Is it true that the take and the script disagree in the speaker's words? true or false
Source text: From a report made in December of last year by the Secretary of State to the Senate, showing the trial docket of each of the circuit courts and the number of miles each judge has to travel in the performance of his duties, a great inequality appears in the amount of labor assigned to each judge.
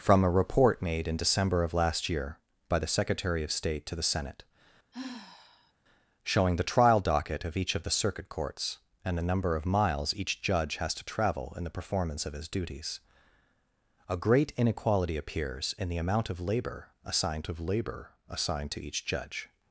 true